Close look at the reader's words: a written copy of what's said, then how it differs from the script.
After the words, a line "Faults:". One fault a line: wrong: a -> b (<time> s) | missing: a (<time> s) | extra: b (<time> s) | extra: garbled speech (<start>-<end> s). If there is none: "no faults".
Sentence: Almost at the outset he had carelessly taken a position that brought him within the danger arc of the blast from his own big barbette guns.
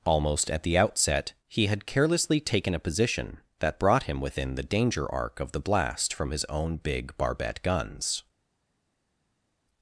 Almost at the outset he had carelessly taken a position that brought him within the danger arc of the blast from his own big barbette guns.
Faults:
no faults